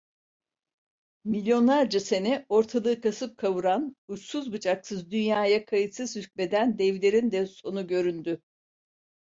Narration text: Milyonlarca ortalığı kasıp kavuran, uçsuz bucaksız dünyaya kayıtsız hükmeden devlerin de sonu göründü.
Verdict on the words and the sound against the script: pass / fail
fail